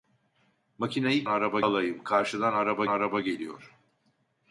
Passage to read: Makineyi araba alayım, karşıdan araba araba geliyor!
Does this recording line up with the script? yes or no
yes